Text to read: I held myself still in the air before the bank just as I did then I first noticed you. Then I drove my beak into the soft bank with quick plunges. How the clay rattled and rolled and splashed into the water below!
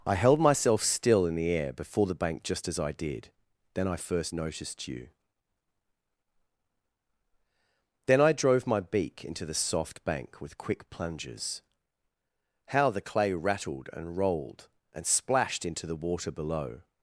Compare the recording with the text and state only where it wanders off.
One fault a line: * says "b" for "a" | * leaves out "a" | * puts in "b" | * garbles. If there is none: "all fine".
all fine